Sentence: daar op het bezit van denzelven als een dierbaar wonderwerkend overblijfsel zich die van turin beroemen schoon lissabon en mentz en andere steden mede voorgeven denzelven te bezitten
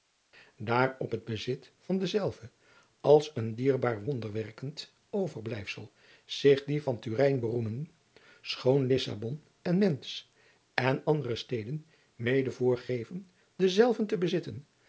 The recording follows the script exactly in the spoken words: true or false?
true